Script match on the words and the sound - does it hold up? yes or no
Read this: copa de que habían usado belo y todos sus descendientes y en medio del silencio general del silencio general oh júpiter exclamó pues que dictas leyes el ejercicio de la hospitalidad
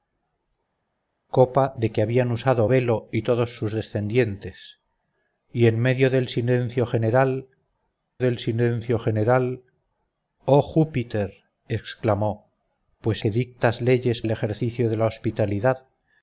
yes